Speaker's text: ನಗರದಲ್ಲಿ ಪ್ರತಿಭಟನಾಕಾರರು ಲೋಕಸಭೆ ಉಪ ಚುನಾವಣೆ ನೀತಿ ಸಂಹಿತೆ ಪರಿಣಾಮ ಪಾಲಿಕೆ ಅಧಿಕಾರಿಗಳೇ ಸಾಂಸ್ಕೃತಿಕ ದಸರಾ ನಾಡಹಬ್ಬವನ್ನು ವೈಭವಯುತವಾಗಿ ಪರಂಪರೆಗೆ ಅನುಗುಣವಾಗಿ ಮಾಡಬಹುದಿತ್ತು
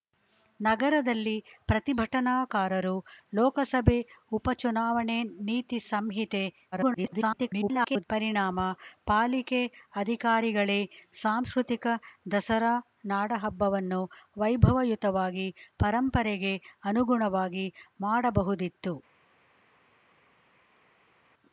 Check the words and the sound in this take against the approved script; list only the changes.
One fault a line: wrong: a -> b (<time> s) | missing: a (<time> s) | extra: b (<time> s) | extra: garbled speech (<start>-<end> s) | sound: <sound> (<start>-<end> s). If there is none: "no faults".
extra: garbled speech (6.7-8.0 s)